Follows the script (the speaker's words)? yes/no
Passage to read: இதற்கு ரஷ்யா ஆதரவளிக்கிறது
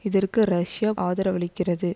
yes